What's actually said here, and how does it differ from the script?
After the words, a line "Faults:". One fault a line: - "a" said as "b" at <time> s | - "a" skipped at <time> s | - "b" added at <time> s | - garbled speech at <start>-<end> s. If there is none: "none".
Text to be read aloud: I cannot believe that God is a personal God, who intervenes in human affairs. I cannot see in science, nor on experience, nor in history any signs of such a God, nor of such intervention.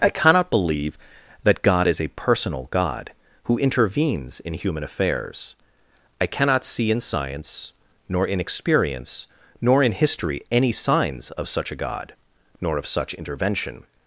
I cannot believe that God is a personal God, who intervenes in human affairs. I cannot see in science, nor in experience, nor in history any signs of such a God, nor of such intervention.
Faults:
- "on" said as "in" at 8.3 s